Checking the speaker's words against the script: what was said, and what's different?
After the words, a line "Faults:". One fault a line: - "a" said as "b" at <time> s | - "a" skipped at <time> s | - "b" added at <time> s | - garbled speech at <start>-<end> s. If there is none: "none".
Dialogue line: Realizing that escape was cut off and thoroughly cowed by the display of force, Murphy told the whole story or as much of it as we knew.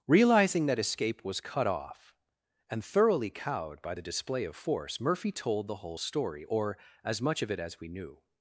Realizing that escape was cut off and thoroughly cowed by the display of force, Murphy told the whole story or as much of it as we knew.
Faults:
none